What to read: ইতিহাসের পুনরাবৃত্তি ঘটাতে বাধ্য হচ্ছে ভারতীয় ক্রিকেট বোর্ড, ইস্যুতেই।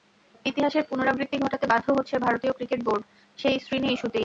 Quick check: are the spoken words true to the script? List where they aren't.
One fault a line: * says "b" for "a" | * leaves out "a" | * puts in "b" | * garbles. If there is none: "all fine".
* puts in "সেই শ্রীনি"